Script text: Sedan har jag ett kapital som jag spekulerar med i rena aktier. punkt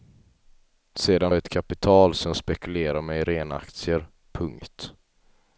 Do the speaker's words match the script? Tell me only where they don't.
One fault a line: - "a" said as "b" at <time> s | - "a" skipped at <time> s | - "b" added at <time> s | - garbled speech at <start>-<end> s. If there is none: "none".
- "har" skipped at 1.3 s